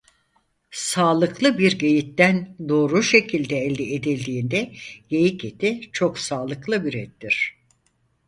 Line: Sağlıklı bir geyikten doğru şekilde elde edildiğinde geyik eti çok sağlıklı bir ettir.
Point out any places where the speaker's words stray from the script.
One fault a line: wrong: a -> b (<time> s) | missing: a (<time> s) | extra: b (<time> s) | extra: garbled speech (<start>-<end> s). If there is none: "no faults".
no faults